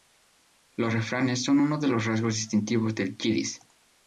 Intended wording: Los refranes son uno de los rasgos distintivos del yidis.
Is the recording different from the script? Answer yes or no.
no